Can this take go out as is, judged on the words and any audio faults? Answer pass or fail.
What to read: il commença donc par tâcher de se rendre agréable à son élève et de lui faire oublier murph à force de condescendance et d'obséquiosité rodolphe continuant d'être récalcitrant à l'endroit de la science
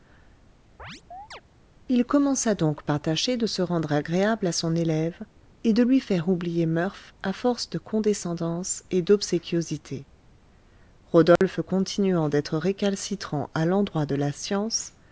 fail